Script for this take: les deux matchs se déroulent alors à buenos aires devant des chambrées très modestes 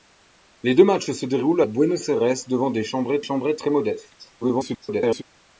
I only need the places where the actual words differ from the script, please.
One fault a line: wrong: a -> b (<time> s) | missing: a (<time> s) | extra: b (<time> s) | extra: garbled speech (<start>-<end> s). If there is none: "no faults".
missing: alors (1.6 s)
extra: chambrées (3.2 s)
extra: garbled speech (4.4-5.2 s)